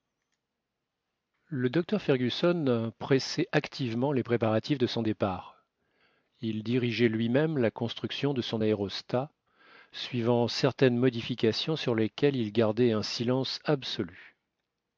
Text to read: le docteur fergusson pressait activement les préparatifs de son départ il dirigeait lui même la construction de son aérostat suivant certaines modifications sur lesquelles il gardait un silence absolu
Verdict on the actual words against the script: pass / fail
pass